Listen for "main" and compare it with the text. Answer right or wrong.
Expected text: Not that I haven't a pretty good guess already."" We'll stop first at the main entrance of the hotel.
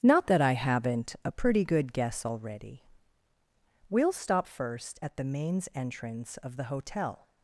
wrong